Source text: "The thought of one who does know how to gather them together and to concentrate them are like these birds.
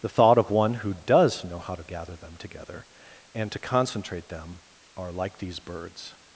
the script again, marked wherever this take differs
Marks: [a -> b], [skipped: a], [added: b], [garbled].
"The thought of one who does know how to gather them together and to concentrate them are like these birds.